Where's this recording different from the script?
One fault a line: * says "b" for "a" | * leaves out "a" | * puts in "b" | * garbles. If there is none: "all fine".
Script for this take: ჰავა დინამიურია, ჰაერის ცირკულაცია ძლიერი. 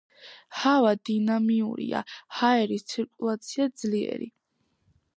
all fine